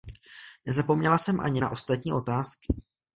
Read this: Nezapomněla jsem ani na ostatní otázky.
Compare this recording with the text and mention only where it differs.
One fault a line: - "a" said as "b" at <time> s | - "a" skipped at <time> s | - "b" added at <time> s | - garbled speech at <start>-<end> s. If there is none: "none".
none